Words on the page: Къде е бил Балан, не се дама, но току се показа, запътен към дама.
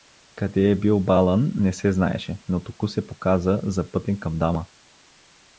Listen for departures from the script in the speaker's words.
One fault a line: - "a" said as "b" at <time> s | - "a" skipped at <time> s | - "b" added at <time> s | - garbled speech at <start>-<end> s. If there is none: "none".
- "дама" said as "знаеше" at 1.9 s